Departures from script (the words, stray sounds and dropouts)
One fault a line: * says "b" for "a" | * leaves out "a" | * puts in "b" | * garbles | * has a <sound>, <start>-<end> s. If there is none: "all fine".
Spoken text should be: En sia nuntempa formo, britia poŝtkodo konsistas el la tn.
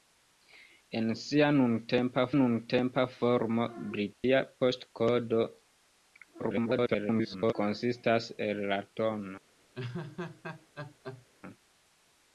* puts in "nuntempa"
* has a dropout, 4.1-4.2 s
* garbles
* has a laugh, 9.7-11.3 s